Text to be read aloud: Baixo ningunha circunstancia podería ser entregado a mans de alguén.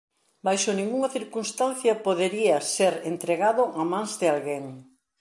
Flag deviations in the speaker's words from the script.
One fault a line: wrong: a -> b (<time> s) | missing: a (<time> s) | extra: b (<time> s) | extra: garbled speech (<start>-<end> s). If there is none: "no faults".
no faults